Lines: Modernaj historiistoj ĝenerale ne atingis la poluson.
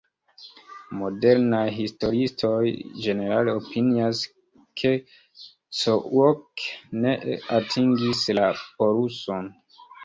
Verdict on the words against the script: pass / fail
fail